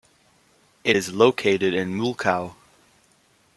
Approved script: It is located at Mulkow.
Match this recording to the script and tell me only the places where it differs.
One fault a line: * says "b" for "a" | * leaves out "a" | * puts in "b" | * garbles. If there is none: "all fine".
* says "in" for "at"